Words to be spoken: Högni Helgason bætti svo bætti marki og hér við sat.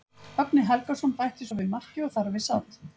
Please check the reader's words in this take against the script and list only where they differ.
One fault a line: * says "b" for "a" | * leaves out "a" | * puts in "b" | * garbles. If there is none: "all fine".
* says "við" for "bætti"
* says "þar" for "hér"